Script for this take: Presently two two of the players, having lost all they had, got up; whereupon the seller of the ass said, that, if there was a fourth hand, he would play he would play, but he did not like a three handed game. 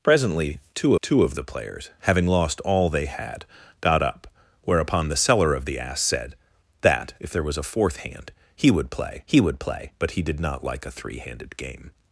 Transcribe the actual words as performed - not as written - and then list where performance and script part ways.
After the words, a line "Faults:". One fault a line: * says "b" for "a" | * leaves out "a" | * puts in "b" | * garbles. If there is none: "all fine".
Presently two two of the players, having lost all they had, got up; whereupon the seller of the ass said, that, if there was a fourth hand, he would play he would play, but he did not like a three handed game.
Faults:
all fine